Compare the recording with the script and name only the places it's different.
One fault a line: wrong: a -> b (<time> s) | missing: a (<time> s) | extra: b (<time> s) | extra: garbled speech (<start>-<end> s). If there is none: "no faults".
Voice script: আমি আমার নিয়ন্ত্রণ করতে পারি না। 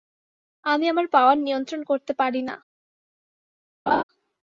extra: পাওয়ার (1.1 s)